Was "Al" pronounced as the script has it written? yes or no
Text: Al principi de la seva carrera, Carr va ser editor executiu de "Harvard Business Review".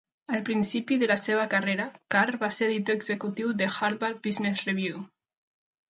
yes